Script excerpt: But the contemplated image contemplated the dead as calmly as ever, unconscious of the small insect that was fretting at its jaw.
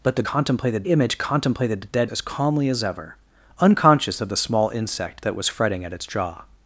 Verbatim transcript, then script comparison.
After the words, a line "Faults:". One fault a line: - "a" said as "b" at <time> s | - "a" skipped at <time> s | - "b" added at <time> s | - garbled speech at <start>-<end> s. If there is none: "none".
But the contemplated image contemplated the dead as calmly as ever, unconscious of the small insect that was fretting at its jaw.
Faults:
none